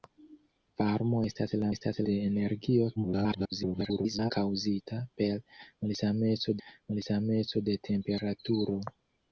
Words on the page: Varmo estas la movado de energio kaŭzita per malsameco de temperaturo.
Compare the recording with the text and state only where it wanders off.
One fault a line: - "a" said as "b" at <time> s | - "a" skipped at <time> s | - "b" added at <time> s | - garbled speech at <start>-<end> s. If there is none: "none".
- "movado" said as "estas" at 1.7 s
- garbled speech at 3.0-4.3 s
- "malsameco" added at 6.7 s